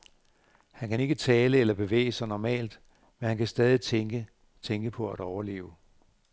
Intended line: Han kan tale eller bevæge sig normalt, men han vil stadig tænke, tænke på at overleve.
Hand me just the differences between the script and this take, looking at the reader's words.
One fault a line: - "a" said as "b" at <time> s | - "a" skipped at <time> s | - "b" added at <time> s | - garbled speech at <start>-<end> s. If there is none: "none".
- "ikke" added at 1.0 s
- "vil" said as "kan" at 3.4 s